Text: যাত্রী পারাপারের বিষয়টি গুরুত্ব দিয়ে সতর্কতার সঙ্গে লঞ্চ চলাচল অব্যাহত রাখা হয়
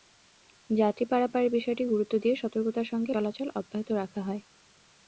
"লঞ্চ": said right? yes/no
no